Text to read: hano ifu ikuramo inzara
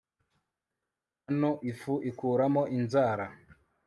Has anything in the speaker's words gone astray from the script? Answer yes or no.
no